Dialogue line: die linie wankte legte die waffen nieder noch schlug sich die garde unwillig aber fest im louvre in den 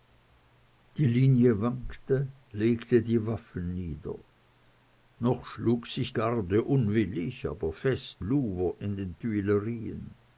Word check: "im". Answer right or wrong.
wrong